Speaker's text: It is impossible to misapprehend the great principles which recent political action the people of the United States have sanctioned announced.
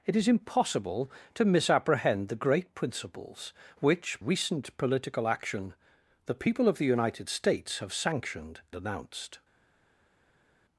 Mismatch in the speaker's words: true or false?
false